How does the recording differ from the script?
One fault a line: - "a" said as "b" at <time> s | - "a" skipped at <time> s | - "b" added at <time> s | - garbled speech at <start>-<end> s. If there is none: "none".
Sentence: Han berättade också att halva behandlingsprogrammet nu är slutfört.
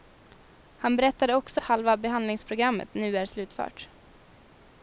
- "att" skipped at 1.6 s